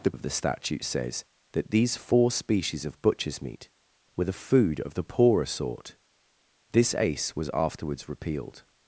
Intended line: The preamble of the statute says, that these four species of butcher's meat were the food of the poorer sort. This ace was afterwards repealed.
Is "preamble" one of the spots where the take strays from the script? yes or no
yes